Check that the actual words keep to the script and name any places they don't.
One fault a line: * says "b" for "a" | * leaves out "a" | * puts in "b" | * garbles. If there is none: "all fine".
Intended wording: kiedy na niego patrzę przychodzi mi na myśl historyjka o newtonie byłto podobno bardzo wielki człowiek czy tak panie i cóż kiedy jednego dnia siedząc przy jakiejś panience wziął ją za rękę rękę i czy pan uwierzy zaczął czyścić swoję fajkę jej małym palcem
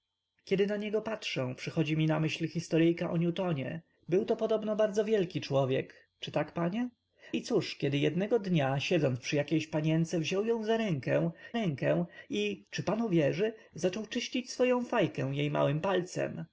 all fine